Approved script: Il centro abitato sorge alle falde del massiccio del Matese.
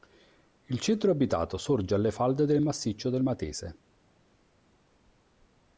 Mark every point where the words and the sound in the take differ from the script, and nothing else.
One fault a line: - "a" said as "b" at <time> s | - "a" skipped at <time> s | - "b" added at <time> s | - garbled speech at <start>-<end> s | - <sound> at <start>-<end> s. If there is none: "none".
none